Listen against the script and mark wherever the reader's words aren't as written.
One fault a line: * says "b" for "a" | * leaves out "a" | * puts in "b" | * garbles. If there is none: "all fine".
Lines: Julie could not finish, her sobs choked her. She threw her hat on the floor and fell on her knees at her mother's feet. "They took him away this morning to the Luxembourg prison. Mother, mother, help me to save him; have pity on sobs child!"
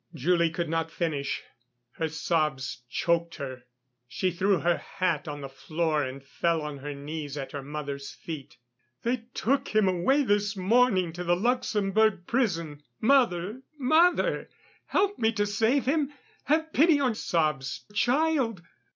all fine